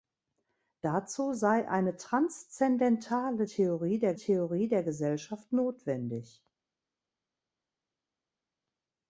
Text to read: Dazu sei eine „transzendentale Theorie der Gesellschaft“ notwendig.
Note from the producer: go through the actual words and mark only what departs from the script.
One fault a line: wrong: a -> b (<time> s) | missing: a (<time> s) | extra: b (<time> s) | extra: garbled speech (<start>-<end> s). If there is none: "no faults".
extra: Theorie der (4.1 s)